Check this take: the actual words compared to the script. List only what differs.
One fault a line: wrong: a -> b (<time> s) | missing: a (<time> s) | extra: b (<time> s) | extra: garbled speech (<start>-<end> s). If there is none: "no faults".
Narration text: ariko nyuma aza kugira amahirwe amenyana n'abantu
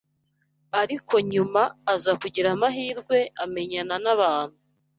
no faults